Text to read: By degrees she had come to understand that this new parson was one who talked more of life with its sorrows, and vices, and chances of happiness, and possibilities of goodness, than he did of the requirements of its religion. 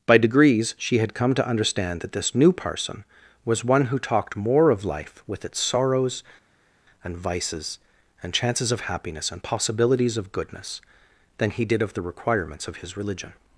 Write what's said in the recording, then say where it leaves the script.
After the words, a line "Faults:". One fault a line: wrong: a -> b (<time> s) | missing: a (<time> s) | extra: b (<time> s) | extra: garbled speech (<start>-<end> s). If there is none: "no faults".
By degrees she had come to understand that this new parson was one who talked more of life with its sorrows, and vices, and chances of happiness, and possibilities of goodness, than he did of the requirements of his religion.
Faults:
wrong: its -> his (12.8 s)